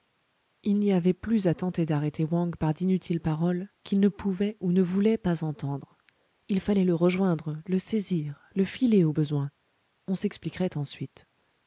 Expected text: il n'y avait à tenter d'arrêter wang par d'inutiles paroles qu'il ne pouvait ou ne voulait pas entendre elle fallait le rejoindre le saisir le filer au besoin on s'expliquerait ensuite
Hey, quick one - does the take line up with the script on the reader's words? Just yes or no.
no